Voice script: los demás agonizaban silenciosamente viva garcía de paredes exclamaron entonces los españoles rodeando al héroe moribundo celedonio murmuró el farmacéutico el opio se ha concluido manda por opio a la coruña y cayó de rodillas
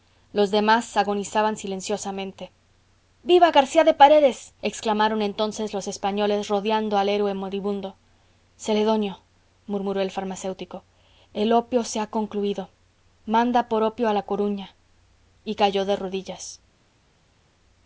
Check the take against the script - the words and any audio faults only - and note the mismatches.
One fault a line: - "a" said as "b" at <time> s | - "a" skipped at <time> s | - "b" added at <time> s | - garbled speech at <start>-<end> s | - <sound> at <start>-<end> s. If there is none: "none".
none